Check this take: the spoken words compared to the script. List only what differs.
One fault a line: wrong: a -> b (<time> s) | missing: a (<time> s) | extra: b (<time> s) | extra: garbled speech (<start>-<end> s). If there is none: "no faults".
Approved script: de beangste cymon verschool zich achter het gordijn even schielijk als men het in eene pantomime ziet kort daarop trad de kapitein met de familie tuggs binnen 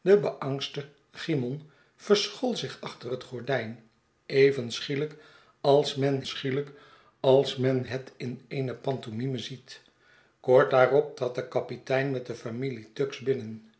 extra: schielijk als men (6.2 s)